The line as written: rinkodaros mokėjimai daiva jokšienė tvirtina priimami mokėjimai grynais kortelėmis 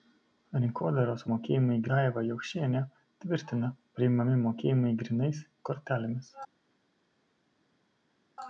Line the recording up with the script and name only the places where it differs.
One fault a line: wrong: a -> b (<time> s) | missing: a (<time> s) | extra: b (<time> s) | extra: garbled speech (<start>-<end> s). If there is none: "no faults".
no faults